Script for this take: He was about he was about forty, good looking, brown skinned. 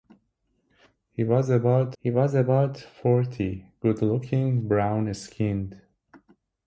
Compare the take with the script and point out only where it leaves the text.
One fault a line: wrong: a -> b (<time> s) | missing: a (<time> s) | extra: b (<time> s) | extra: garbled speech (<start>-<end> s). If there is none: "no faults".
no faults